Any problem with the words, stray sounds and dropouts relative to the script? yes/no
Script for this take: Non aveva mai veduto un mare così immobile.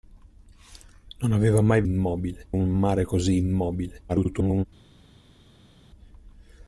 yes